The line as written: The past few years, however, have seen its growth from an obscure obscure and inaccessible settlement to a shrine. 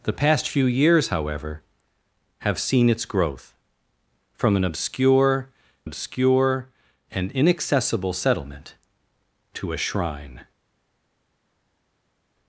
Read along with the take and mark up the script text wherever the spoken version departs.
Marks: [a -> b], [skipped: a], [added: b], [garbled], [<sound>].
The past few years, however, have seen its growth from an obscure obscure and inaccessible settlement to a shrine.